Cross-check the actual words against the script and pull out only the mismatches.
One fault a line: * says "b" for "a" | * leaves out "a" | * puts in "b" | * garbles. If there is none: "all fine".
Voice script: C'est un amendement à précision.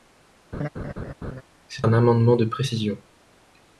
* says "de" for "à"